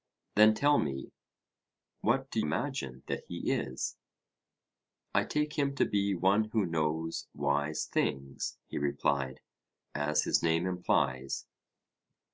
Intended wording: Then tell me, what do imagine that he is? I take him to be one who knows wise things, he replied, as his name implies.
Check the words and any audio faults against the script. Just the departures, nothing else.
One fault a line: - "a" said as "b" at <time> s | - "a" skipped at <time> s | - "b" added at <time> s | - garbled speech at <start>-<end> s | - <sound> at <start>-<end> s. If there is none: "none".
none